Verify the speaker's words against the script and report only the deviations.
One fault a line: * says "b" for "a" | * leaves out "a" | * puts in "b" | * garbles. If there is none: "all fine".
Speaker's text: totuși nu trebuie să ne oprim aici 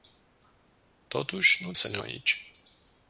* leaves out "trebuie"
* leaves out "oprim"